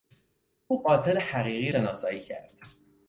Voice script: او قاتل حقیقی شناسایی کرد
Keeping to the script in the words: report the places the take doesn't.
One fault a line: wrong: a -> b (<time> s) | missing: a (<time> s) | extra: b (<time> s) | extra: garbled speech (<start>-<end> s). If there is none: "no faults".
no faults